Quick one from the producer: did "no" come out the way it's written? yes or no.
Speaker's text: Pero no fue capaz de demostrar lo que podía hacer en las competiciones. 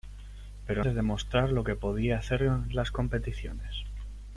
no